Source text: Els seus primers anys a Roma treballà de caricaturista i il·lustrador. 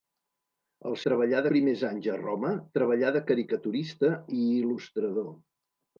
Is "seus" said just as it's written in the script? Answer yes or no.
no